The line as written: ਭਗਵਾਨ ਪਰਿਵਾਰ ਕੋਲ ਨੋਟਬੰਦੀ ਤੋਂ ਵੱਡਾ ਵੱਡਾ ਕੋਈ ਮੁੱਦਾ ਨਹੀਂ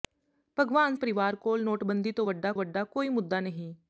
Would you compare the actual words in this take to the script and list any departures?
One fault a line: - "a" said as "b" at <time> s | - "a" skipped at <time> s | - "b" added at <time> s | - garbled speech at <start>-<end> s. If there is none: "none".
none